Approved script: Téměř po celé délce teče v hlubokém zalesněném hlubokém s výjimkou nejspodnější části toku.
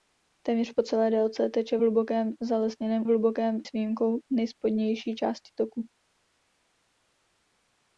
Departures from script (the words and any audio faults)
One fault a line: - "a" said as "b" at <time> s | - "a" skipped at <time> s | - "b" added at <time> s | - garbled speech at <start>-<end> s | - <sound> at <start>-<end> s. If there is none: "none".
none